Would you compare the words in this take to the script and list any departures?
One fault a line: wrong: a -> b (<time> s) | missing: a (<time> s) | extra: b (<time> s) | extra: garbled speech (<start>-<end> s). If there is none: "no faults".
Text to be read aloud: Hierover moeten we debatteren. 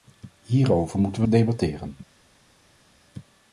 no faults